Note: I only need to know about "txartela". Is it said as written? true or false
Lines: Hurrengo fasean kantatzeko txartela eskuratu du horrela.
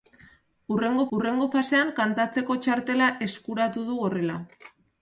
true